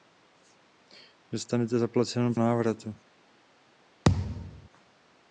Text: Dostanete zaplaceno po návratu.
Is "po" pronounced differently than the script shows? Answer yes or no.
yes